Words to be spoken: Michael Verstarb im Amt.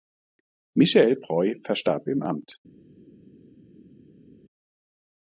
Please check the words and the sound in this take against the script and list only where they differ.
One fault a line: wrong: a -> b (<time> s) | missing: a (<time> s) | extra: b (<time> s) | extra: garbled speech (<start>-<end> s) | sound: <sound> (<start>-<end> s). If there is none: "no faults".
extra: Breu (1.2 s)